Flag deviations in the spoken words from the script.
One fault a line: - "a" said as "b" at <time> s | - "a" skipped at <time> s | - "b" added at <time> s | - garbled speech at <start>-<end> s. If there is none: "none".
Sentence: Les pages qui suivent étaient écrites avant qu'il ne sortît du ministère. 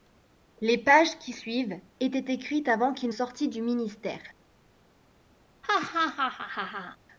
- "ne" skipped at 3.1 s